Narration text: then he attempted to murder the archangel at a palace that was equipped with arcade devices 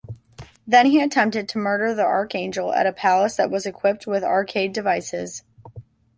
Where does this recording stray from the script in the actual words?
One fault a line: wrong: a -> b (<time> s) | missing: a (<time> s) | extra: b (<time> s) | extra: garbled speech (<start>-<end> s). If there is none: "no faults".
no faults